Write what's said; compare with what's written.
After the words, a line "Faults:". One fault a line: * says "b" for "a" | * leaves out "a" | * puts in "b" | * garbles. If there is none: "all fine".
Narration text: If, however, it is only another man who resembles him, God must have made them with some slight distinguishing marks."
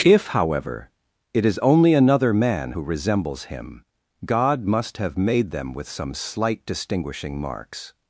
If, however, it is only another man who resembles him, God must have made them with some slight distinguishing marks."
Faults:
all fine